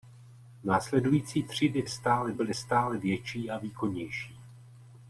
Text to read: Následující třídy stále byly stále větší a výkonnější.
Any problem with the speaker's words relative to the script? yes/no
no